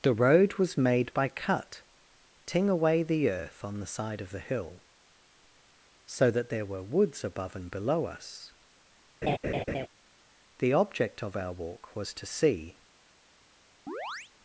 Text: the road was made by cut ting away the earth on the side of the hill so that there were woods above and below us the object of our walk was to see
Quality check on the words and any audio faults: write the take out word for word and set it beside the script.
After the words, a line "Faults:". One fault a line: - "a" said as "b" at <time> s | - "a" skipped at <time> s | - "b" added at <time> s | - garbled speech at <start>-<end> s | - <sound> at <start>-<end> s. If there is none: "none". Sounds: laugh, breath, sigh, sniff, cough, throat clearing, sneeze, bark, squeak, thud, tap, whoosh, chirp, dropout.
the road was made by cut ting away the earth on the side of the hill so that there were woods above and below us the object of our walk was to see
Faults:
- laugh at 9.2-9.9 s
- chirp at 13.9-14.3 s